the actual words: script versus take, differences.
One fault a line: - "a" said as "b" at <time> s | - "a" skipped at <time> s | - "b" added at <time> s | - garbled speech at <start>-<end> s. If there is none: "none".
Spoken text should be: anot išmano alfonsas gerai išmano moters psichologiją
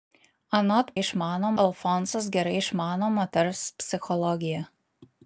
none